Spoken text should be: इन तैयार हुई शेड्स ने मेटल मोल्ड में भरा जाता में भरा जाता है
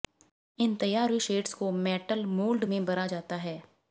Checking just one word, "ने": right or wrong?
wrong